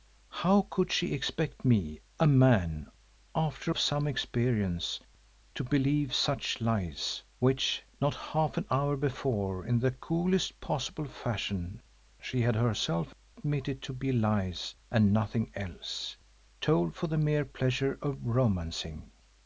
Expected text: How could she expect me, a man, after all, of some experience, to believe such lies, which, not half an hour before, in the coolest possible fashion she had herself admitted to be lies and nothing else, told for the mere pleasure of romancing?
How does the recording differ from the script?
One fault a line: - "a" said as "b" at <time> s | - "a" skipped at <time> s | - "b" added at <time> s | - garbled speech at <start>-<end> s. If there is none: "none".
- "all" skipped at 3.8 s